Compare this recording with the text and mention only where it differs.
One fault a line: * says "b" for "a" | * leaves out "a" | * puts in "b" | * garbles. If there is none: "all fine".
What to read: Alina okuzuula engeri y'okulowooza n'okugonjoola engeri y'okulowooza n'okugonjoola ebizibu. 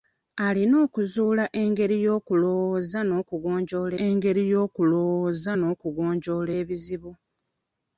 all fine